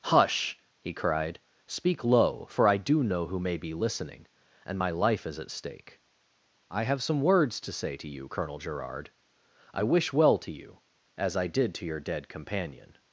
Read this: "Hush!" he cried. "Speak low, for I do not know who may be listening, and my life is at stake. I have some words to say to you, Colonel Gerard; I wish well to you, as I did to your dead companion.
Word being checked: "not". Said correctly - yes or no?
no